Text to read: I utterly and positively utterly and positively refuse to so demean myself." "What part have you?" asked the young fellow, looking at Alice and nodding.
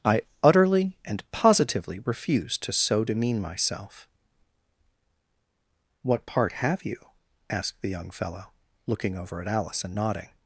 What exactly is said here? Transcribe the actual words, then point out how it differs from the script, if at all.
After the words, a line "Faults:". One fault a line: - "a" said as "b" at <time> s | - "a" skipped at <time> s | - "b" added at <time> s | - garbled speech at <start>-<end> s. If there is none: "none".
I utterly and positively refuse to so demean myself." "What part have you?" asked the young fellow, looking over at Alice and nodding.
Faults:
- "utterly and positively" skipped at 2.0 s
- "over" added at 9.2 s